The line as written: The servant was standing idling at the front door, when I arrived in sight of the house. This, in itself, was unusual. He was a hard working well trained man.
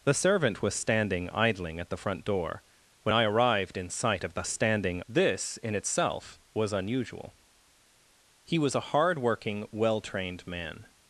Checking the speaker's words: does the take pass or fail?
fail